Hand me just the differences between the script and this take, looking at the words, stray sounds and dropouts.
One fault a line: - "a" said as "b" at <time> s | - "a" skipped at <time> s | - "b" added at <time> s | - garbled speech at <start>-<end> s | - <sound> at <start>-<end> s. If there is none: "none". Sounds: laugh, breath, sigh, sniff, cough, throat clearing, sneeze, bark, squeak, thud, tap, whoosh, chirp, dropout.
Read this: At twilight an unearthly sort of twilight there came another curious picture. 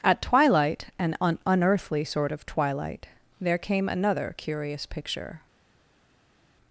- "un" added at 1.2 s